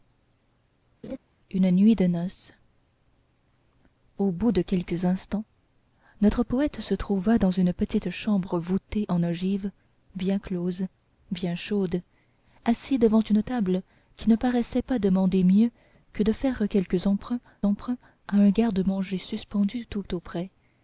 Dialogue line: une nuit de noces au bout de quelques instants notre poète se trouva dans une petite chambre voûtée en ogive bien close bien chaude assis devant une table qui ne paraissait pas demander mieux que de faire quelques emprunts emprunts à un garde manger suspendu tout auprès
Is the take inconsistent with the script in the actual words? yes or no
no